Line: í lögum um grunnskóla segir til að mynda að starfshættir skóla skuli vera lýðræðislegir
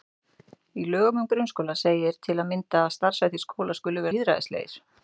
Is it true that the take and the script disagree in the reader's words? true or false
true